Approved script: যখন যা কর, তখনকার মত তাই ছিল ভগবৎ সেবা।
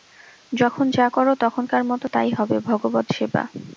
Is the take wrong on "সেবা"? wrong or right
right